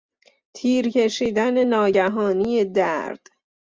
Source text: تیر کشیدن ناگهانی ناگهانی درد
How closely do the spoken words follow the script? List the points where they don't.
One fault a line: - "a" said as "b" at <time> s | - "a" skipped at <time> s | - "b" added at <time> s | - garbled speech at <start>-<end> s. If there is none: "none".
- "ناگهانی" skipped at 2.6 s